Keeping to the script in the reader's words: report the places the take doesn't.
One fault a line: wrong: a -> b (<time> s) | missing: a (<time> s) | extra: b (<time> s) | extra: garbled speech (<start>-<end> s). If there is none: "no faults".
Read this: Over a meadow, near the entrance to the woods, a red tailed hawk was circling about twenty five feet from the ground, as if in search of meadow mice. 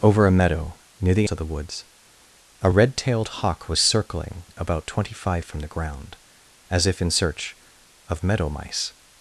missing: entrance (1.3 s)
missing: feet (5.4 s)